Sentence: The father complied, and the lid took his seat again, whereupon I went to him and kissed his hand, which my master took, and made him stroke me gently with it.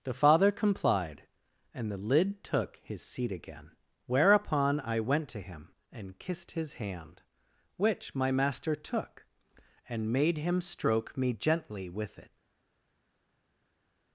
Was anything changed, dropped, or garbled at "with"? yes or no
no